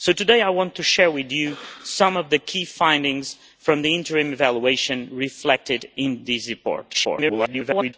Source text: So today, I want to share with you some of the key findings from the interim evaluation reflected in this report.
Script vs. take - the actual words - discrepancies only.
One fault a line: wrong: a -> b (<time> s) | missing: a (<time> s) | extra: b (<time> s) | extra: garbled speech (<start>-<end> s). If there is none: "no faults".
extra: garbled speech (6.9-7.9 s)